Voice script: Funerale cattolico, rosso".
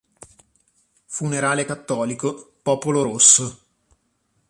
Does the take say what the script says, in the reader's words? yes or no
no